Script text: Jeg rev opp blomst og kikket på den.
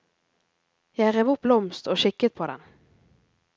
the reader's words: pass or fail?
pass